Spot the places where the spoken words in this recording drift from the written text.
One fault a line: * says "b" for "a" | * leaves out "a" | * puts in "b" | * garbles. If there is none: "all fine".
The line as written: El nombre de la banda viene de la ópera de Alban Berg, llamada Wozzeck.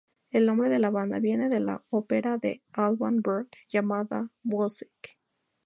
all fine